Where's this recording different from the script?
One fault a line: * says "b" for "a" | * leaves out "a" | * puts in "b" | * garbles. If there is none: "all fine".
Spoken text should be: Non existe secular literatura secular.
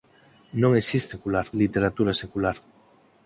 all fine